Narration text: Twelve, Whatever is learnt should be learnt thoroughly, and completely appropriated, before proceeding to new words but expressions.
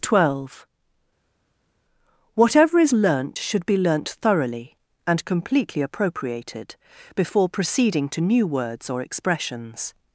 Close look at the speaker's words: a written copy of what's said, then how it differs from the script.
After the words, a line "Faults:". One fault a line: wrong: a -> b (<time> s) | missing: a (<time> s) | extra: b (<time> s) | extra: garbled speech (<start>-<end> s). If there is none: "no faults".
Twelve, Whatever is learnt should be learnt thoroughly, and completely appropriated, before proceeding to new words or expressions.
Faults:
wrong: but -> or (8.9 s)